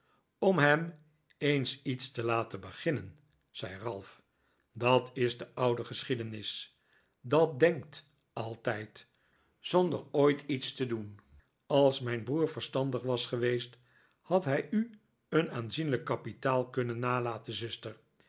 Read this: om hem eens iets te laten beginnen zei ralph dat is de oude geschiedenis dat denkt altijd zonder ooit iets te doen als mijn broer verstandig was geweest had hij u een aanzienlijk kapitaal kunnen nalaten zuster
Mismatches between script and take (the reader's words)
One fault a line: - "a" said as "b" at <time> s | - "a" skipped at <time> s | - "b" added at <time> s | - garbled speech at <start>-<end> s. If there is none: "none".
none